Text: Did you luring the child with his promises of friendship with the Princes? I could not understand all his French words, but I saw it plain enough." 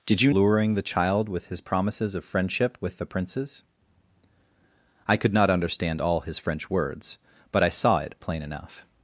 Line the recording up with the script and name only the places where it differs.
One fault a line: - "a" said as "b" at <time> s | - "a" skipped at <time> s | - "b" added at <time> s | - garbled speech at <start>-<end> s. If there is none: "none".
none